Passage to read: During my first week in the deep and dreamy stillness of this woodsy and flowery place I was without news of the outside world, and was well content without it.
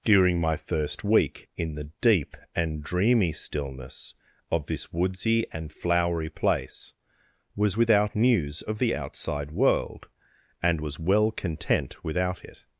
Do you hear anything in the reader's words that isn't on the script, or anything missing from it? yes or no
yes